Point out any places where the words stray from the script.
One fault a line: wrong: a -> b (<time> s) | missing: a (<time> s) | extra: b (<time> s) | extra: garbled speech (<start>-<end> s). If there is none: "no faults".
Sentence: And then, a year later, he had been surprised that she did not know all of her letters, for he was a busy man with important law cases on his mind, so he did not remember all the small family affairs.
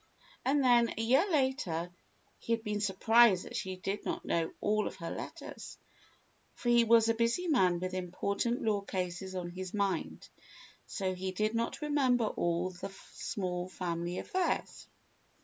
no faults